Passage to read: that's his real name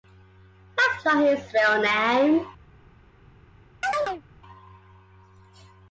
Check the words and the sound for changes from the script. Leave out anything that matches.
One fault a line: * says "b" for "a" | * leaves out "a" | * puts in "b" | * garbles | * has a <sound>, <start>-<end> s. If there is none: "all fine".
* puts in "not"
* has a chirp, 3.8-4.2 s